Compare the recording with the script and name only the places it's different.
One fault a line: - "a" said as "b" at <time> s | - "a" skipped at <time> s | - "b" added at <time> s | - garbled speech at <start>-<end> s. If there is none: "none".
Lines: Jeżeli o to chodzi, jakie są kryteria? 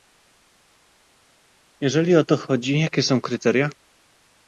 none